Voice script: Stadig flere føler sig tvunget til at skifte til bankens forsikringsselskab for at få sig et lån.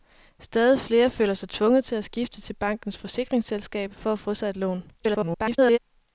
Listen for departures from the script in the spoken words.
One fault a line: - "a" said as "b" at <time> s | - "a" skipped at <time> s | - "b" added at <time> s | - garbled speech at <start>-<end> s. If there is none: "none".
- garbled speech at 5.0-5.8 s